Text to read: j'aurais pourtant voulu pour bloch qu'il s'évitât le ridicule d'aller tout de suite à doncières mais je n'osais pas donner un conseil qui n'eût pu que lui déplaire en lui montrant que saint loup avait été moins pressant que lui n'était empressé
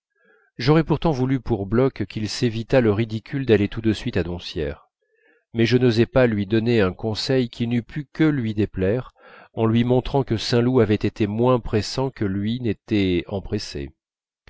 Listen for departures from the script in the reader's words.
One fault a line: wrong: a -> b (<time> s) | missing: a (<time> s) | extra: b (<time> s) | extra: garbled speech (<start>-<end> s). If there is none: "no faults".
extra: lui (6.3 s)